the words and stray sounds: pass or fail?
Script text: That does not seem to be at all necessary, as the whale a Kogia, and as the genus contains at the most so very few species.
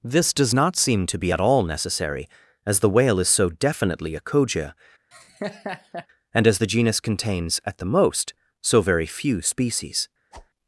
fail